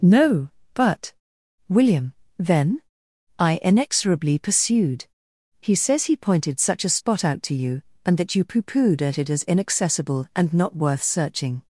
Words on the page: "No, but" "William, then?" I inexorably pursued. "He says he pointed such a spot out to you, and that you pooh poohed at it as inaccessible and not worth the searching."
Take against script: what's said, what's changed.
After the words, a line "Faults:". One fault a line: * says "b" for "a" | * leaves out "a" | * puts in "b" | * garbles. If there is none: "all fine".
"No, but" "William, then?" I inexorably pursued. "He says he pointed such a spot out to you, and that you pooh poohed at it as inaccessible and not worth searching."
Faults:
* leaves out "the"